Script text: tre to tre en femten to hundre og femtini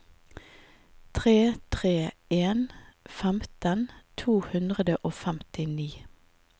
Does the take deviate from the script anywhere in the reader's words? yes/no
yes